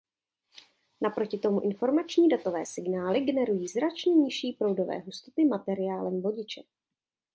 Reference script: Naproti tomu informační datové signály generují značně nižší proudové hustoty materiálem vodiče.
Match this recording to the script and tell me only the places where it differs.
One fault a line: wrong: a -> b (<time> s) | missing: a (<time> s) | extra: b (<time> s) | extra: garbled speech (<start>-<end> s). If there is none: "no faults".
no faults